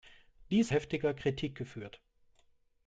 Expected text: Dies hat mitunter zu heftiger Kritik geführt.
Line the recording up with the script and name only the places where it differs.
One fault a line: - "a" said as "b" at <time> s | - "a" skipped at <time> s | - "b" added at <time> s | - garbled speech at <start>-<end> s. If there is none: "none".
- "hat mitunter zu" skipped at 0.7 s